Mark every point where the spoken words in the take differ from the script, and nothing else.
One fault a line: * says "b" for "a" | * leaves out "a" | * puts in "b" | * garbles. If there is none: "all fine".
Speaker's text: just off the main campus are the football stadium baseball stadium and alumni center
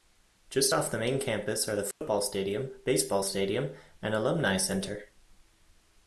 all fine